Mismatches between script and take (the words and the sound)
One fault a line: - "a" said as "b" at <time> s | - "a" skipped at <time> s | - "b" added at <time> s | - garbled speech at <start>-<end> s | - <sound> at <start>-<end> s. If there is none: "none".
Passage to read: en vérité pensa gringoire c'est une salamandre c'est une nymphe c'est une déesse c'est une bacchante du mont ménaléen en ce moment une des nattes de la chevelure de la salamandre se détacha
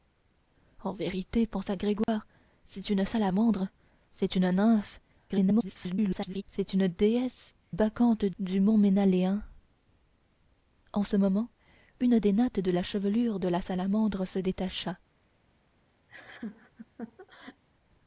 - dropout at 2.0-2.1 s
- garbled speech at 5.3-6.4 s
- "c'est une" skipped at 7.5 s
- laugh at 16.1-17.6 s